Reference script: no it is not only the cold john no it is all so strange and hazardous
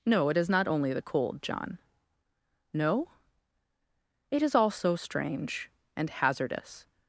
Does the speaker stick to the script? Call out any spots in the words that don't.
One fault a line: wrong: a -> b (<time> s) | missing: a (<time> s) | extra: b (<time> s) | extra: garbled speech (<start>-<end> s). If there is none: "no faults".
no faults